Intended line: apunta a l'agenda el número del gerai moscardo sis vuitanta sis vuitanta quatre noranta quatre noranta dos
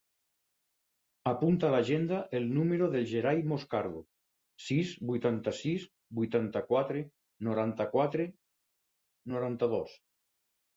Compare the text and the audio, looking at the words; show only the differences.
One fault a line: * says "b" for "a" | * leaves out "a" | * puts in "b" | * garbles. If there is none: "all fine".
all fine